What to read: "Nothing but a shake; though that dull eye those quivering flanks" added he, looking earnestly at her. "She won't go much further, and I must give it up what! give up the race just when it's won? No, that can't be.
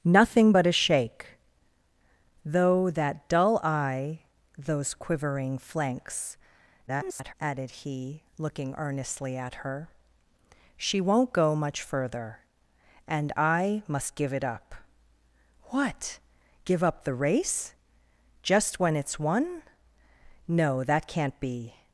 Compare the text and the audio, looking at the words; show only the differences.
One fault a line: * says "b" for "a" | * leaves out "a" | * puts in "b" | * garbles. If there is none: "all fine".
* garbles